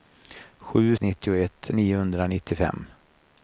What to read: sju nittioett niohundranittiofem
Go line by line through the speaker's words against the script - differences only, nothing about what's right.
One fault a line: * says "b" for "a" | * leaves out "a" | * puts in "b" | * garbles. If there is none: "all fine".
all fine